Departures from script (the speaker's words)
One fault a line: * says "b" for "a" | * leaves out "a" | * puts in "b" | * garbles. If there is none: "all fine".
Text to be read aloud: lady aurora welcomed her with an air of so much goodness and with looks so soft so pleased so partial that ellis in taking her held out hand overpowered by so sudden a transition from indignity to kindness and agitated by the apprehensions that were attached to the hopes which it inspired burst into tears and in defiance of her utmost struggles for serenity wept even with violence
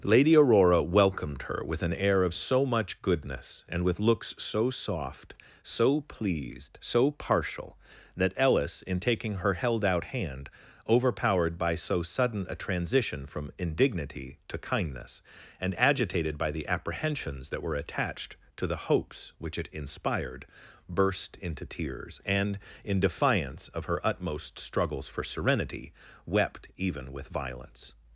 all fine